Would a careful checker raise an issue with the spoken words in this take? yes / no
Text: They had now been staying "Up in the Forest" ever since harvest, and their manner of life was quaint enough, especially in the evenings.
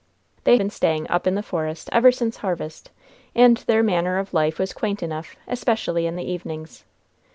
yes